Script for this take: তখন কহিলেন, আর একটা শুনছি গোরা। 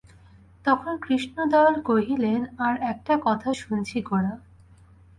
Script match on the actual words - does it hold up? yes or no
no